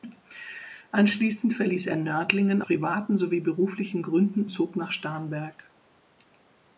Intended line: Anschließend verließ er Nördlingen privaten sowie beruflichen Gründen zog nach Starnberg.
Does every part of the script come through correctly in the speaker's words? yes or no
yes